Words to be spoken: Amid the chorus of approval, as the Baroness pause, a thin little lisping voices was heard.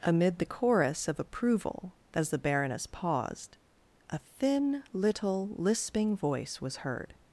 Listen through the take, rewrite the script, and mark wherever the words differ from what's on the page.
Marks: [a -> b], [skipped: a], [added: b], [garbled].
Amid the chorus of approval, as the Baroness [pause, -> paused] a thin little lisping [voices -> voice] was heard.